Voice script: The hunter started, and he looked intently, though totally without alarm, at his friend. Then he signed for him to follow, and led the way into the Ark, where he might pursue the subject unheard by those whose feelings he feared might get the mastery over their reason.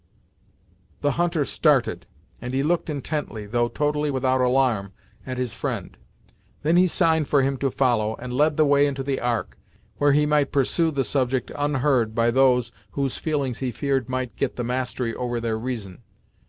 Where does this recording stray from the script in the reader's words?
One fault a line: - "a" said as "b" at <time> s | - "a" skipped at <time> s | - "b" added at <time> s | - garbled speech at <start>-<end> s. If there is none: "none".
none